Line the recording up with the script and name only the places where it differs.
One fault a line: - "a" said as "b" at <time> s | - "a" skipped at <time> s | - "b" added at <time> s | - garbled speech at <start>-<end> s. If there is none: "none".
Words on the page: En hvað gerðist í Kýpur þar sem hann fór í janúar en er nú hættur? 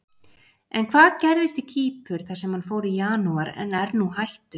none